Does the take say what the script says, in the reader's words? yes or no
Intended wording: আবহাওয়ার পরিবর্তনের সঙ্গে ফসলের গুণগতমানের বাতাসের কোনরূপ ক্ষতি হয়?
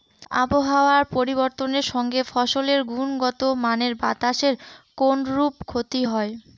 yes